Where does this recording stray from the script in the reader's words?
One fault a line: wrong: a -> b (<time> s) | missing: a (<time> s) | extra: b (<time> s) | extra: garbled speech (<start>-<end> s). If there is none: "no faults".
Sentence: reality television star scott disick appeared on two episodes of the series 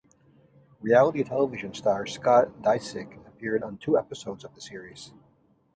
no faults